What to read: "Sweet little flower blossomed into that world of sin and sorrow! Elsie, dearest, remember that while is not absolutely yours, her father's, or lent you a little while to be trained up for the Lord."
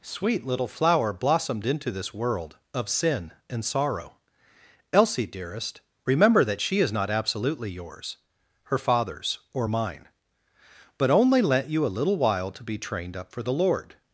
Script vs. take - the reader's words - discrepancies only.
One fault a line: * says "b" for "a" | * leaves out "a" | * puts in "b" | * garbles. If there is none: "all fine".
* says "this" for "that"
* says "she" for "while"
* puts in "mine but only"